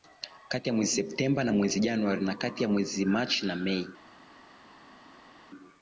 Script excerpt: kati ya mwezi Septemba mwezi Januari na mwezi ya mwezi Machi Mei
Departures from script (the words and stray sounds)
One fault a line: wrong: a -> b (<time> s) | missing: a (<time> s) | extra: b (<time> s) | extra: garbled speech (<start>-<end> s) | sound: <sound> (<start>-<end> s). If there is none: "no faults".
extra: na (1.4 s)
wrong: mwezi -> kati (2.4 s)
extra: na (3.5 s)